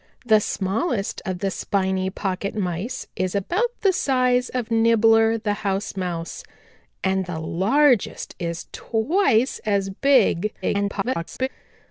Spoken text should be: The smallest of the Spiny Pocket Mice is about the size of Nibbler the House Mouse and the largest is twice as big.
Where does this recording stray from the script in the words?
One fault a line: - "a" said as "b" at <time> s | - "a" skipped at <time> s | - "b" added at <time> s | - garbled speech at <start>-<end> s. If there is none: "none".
- garbled speech at 10.6-11.5 s